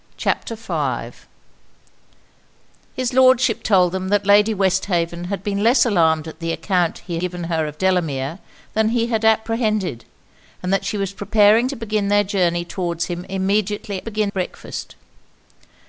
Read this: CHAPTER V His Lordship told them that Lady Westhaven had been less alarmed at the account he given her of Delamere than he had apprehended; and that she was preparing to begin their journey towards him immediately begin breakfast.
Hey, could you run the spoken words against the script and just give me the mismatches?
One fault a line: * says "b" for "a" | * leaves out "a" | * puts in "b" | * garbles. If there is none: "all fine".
all fine